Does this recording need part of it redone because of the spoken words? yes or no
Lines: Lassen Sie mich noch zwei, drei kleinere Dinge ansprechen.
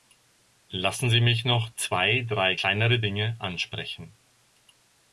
no